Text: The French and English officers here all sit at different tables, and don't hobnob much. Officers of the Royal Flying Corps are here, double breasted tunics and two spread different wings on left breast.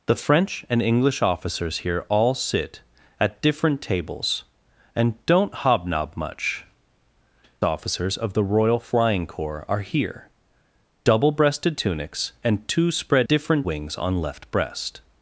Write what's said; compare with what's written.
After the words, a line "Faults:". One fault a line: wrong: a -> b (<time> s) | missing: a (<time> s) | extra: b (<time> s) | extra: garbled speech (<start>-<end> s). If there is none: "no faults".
The French and English officers here all sit at different tables, and don't hobnob much. Officers of the Royal Flying Corps are here, double breasted tunics and two spread different wings on left breast.
Faults:
no faults